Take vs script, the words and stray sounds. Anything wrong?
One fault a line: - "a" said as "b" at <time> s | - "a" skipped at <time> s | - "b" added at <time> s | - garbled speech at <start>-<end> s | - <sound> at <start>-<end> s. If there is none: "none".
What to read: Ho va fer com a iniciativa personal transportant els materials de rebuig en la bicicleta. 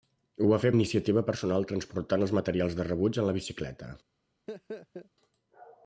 - "com" skipped at 0.7 s
- laugh at 4.5-5.1 s